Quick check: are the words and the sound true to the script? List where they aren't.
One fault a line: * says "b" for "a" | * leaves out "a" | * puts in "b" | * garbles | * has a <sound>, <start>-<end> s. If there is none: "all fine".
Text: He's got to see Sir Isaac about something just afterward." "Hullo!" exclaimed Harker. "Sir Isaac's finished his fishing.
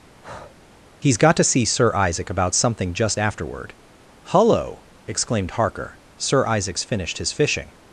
* has a breath, 0.2-0.6 s